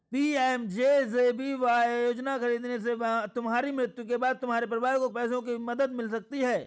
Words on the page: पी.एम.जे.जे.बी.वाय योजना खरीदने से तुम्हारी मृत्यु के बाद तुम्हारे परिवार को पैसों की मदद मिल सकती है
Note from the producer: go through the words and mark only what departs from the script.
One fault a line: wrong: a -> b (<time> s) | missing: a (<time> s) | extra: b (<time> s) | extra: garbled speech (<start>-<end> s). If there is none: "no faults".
no faults